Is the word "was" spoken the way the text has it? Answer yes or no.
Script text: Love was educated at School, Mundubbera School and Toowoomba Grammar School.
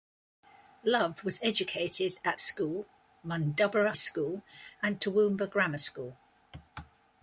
yes